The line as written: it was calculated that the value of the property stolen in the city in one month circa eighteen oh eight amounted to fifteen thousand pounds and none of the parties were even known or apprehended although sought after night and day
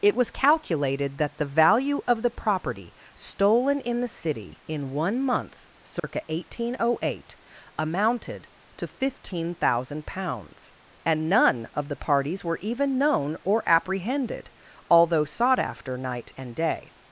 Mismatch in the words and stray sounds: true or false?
true